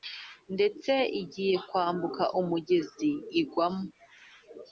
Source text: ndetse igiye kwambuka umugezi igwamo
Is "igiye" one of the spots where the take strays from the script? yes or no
no